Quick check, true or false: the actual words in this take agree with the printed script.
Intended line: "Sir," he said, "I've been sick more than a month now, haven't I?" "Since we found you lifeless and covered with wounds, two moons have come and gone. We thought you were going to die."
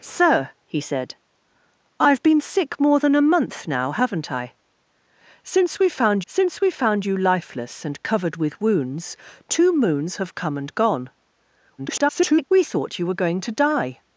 false